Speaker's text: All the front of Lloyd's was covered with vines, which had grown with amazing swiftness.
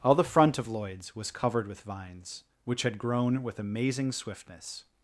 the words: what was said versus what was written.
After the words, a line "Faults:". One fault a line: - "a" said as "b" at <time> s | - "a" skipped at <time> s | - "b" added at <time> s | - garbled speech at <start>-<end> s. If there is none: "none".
All the front of Lloyd's was covered with vines, which had grown with amazing swiftness.
Faults:
none